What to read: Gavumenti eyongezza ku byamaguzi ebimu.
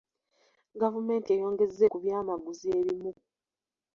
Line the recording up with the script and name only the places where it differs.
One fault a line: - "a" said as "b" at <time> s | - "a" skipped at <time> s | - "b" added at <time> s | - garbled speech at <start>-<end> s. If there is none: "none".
none